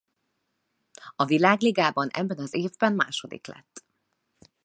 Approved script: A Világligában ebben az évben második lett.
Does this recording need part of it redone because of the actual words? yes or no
no